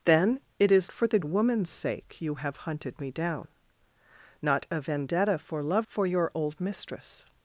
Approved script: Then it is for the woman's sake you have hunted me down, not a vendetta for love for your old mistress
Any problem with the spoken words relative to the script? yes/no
no